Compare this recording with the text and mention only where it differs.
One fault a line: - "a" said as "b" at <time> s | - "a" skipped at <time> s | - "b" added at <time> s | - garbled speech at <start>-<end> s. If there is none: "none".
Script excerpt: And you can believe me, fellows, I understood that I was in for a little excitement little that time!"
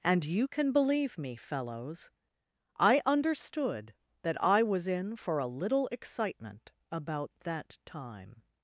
- "little" said as "about" at 6.9 s